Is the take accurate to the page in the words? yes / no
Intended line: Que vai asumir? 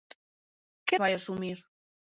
yes